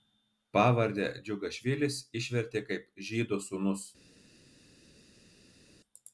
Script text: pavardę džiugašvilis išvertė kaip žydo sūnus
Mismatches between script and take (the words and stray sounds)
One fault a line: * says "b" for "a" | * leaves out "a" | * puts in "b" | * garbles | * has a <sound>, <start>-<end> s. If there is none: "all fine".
all fine